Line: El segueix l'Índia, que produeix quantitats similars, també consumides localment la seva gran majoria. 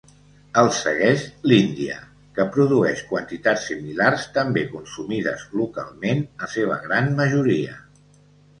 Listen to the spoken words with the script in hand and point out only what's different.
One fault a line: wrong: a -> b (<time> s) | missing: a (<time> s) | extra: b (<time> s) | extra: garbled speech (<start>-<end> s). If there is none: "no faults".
no faults